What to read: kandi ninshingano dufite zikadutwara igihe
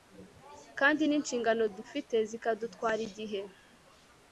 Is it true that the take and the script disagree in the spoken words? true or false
false